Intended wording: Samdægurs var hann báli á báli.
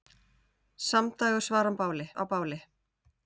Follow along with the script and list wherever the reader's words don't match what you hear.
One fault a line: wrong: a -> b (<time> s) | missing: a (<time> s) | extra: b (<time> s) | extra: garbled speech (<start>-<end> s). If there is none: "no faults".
no faults